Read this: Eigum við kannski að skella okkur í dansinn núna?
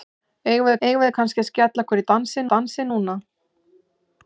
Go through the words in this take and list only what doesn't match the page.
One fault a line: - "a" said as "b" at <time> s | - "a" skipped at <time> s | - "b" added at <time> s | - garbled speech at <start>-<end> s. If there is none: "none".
- "eigum við" added at 0.9 s
- "dansinn" added at 2.5 s